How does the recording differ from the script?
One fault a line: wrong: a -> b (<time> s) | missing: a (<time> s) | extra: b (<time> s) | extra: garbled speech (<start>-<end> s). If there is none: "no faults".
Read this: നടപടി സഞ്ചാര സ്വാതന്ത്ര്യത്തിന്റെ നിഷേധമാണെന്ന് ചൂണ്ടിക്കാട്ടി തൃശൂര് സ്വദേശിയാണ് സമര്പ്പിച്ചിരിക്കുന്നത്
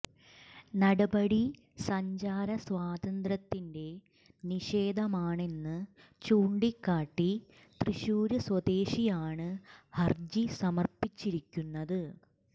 extra: ഹര്ജി (10.0 s)